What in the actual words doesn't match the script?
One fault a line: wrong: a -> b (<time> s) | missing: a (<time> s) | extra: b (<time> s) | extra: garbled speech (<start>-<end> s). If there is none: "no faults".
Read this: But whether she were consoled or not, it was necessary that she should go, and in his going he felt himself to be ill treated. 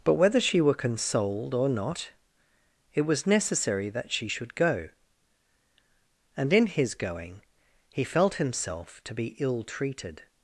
no faults